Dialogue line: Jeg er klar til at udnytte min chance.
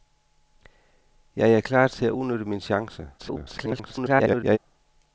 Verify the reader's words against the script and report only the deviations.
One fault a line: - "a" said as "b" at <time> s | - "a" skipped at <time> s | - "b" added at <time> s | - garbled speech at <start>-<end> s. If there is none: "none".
- garbled speech at 3.2-4.6 s